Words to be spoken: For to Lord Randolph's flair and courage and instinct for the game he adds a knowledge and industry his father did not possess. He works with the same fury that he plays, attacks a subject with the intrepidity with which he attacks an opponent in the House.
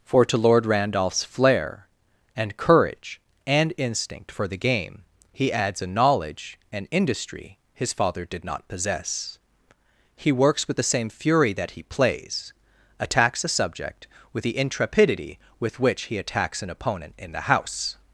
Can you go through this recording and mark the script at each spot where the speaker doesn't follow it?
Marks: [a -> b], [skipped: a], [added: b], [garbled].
For to Lord Randolph's flair and courage and instinct for the game he adds a knowledge and industry his father did not possess. He works with the same fury that he plays, attacks a subject with the intrepidity with which he attacks an opponent in the House.